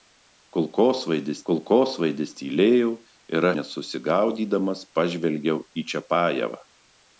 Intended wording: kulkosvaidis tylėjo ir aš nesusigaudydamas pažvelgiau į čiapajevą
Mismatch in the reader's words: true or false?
true